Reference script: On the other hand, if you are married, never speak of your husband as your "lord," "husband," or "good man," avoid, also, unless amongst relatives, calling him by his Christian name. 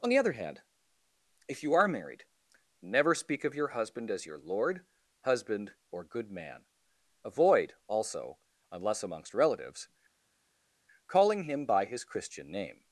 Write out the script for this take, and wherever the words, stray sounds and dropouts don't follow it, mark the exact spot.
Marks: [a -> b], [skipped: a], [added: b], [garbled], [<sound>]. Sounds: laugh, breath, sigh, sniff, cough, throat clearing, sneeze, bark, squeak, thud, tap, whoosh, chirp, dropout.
On the other hand, if you are married, never speak of your husband as your "lord," "husband," or "good man," avoid, also, unless amongst relatives, calling him by his Christian name.